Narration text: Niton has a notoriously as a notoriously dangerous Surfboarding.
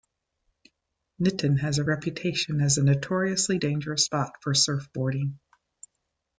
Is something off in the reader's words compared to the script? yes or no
yes